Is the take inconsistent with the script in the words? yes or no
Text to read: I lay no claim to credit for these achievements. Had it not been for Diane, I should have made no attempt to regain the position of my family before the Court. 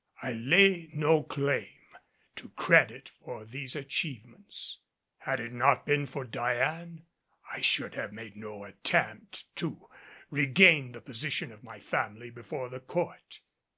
no